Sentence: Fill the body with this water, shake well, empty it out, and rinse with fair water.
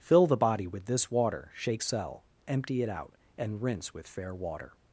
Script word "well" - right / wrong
wrong